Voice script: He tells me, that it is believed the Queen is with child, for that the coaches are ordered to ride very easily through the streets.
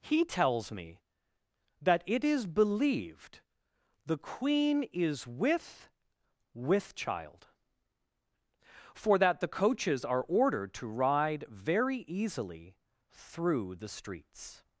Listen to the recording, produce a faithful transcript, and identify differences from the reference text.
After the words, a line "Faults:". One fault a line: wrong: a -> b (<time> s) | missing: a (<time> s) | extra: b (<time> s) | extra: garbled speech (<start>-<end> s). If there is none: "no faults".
He tells me, that it is believed the Queen is with with child, for that the coaches are ordered to ride very easily through the streets.
Faults:
extra: with (6.5 s)